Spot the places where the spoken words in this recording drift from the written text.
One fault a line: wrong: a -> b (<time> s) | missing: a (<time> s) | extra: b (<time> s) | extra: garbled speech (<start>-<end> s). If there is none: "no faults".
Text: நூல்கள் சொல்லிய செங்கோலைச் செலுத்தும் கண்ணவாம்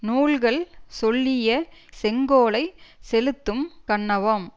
no faults